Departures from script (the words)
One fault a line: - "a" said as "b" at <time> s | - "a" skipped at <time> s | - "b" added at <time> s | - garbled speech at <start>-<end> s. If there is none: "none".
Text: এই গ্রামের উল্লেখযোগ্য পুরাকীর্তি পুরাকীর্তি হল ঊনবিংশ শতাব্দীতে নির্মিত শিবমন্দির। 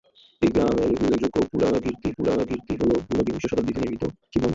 none